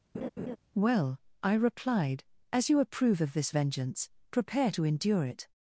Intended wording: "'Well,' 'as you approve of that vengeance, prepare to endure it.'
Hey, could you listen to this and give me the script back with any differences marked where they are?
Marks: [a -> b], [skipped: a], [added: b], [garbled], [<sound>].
[laugh] "'Well,' [added: I replied] 'as you approve of [that -> this] vengeance, prepare to endure it.'